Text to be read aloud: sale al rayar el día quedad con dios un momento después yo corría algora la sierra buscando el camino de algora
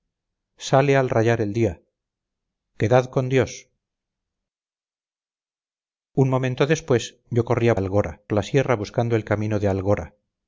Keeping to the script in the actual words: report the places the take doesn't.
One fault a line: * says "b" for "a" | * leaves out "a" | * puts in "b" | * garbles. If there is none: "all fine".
all fine